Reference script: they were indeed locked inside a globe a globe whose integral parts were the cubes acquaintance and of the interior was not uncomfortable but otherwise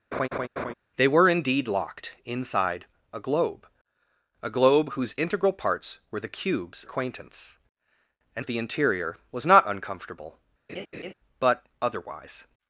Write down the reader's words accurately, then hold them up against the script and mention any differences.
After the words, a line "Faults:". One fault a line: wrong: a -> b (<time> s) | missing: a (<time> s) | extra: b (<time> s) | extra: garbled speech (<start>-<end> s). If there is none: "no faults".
they were indeed locked inside a globe a globe whose integral parts were the cubes acquaintance and of the interior was not uncomfortable but otherwise
Faults:
no faults